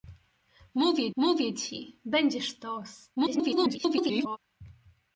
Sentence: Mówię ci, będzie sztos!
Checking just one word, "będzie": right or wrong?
right